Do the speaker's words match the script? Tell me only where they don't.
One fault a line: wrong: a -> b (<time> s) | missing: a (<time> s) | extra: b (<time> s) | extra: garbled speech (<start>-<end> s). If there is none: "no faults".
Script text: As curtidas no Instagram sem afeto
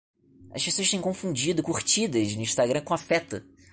extra: pessoas têm confundido (0.7 s)
wrong: sem -> com (2.8 s)